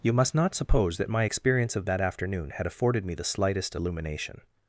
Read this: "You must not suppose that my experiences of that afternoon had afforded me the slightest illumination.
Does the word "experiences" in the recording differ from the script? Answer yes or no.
yes